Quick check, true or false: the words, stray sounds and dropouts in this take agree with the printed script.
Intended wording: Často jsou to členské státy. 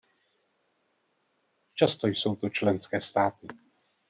true